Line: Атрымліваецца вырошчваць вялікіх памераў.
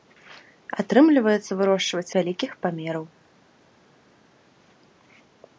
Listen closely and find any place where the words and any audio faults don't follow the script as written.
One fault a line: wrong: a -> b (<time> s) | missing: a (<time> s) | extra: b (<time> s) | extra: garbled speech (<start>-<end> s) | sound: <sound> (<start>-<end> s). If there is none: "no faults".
no faults